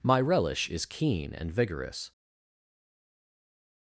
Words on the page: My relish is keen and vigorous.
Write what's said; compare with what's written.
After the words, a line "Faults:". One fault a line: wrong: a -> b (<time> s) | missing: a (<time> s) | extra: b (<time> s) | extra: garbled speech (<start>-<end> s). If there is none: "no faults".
My relish is keen and vigorous.
Faults:
no faults